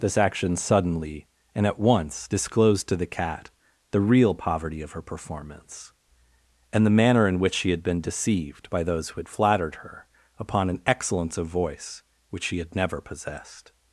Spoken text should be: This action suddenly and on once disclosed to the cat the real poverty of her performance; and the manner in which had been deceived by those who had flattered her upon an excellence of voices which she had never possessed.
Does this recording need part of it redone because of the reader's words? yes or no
yes